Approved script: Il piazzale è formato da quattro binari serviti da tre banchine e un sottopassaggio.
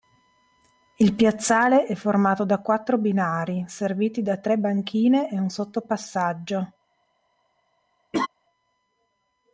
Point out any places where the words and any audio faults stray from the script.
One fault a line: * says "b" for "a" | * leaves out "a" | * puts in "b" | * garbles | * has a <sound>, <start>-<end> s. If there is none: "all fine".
* has a laugh, 8.1-8.3 s